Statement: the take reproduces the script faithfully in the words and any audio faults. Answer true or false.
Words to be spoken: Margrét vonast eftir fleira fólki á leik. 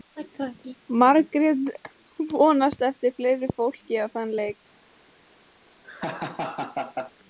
false